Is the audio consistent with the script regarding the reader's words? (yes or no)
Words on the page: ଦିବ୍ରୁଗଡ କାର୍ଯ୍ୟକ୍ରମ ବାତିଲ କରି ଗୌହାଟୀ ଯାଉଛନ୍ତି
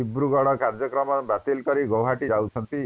yes